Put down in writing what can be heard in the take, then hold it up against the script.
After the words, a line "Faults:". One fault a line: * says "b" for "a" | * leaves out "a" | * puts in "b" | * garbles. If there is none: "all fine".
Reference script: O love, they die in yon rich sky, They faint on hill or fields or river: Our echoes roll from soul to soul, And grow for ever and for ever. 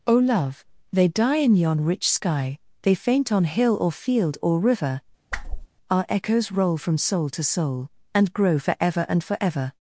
O love, they die in yon rich sky, They faint on hill or field or river: Our echoes roll from soul to soul, And grow for ever and for ever.
Faults:
* says "field" for "fields"